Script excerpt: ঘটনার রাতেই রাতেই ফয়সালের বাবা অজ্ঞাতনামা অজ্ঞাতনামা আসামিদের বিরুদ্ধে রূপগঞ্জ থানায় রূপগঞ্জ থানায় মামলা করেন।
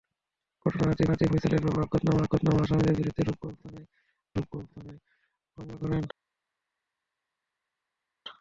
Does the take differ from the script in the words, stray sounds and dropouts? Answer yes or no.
no